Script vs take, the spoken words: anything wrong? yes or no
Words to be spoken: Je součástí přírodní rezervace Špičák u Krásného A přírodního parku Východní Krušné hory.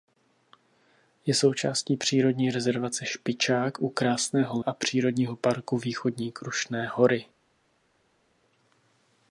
no